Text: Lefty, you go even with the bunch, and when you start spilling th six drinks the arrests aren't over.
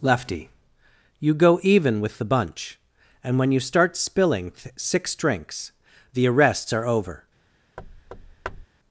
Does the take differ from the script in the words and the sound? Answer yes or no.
yes